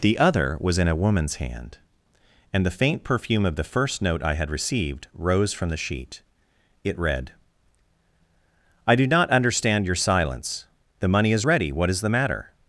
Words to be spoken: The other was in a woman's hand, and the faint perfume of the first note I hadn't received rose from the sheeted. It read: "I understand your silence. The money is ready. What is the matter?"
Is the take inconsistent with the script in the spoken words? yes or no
yes